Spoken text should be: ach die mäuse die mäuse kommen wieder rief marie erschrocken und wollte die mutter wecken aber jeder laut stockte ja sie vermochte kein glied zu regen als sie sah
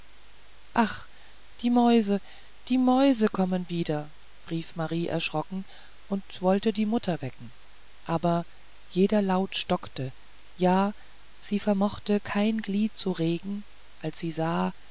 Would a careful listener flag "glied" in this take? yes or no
no